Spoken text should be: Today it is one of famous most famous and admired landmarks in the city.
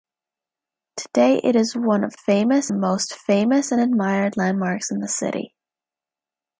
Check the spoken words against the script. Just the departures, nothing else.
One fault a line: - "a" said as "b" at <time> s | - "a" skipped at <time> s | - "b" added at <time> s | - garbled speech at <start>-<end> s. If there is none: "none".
none